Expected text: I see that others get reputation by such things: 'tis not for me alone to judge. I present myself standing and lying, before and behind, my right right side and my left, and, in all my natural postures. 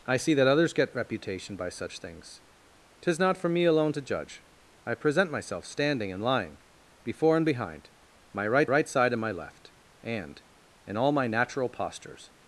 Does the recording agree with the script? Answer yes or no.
yes